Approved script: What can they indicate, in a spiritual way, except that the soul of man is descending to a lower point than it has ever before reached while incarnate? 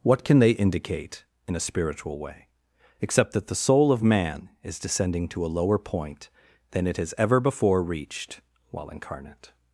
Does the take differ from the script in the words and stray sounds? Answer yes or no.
no